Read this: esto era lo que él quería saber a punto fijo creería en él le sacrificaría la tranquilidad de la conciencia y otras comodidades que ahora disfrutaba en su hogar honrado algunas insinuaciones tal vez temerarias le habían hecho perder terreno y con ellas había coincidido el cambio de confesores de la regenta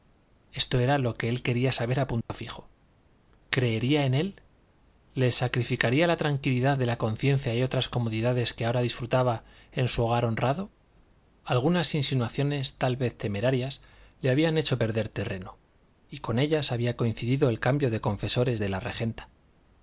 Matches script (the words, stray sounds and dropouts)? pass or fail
fail